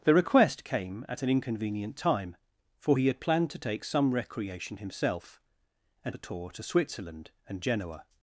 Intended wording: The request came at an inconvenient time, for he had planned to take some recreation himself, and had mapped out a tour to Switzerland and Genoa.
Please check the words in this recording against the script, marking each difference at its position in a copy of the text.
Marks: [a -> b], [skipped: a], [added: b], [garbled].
The request came at an inconvenient time, for he had planned to take some recreation himself, and [skipped: had mapped out] a tour to Switzerland and Genoa.